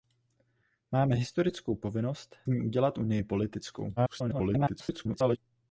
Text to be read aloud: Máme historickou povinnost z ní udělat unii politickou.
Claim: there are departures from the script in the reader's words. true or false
true